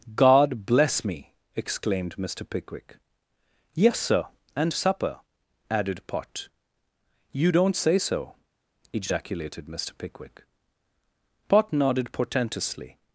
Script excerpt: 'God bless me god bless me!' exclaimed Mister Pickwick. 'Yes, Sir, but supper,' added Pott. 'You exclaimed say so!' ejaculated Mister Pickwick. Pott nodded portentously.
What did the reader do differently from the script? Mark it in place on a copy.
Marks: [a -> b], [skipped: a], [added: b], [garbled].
'God bless me [skipped: god bless me!'] exclaimed Mister Pickwick. 'Yes, Sir, [but -> and] supper,' added Pott. 'You [exclaimed -> don't] say so!' ejaculated Mister Pickwick. Pott nodded portentously.